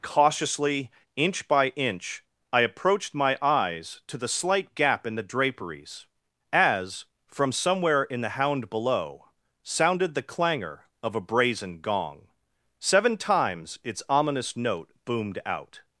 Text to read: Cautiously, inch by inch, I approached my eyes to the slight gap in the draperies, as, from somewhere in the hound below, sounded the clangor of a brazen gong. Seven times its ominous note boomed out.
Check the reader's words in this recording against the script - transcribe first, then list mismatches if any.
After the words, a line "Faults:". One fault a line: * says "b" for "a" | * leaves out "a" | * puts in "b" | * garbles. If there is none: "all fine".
Cautiously, inch by inch, I approached my eyes to the slight gap in the draperies, as, from somewhere in the hound below, sounded the clangor of a brazen gong. Seven times its ominous note boomed out.
Faults:
all fine